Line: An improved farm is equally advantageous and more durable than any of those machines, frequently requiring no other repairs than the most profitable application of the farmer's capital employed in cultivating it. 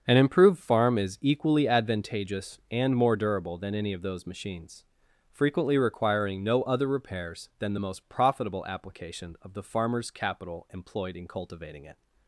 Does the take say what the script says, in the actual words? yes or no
yes